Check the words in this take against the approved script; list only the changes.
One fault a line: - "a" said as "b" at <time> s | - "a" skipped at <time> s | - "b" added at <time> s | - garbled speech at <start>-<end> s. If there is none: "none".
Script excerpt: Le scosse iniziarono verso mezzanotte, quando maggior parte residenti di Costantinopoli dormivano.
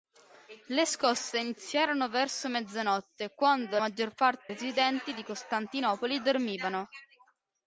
none